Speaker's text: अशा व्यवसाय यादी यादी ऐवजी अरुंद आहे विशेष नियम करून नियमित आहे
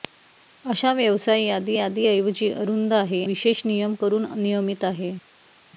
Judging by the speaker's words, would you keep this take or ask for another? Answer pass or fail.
pass